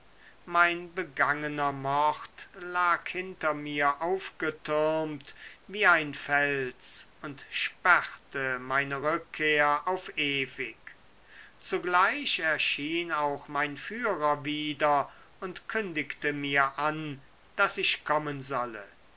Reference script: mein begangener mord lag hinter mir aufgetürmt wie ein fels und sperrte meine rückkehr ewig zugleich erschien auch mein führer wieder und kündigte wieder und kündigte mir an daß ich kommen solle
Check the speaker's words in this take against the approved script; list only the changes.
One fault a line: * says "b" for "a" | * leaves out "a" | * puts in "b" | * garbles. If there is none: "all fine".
* puts in "auf"
* leaves out "wieder und kündigte"